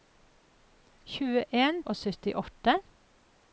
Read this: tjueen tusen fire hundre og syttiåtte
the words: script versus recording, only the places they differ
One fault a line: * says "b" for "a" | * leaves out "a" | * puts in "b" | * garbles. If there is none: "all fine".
* leaves out "tusen fire hundre"